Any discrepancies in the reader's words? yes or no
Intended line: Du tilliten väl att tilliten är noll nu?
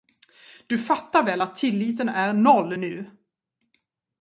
yes